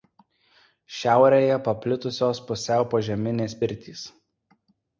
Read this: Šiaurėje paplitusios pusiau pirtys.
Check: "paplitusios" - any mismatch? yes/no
no